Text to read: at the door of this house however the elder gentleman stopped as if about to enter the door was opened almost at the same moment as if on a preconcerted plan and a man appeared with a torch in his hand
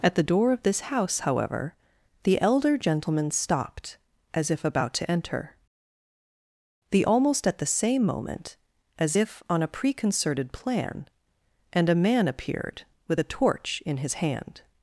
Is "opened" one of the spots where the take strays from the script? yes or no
yes